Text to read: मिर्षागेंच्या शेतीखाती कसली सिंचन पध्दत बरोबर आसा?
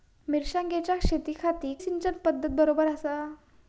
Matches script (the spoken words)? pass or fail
fail